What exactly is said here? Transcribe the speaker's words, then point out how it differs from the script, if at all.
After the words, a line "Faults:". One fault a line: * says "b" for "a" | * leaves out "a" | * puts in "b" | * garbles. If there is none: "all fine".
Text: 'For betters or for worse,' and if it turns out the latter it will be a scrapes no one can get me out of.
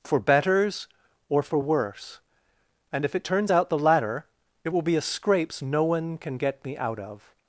'For betters or for worse,' and if it turns out the latter it will be a scrapes no one can get me out of.
Faults:
all fine